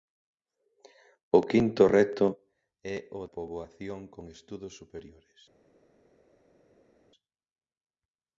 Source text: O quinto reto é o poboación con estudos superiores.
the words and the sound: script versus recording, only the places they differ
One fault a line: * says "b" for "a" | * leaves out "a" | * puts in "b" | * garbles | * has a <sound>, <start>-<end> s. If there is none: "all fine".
all fine